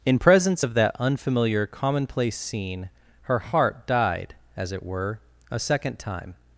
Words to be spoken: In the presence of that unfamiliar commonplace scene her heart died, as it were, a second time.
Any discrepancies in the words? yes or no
yes